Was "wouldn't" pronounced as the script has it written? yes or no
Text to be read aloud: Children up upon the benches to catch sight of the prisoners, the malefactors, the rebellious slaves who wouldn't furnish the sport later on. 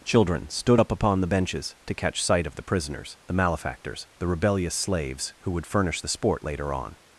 no